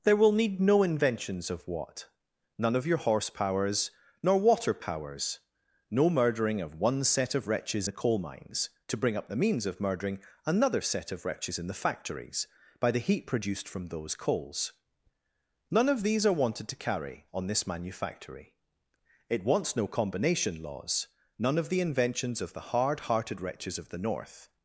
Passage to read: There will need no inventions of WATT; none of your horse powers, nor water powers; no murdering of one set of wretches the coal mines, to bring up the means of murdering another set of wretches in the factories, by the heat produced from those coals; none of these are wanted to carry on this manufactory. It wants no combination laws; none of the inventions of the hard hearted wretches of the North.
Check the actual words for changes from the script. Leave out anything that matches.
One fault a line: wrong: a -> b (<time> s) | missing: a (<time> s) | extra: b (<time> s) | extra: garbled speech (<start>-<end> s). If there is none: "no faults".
no faults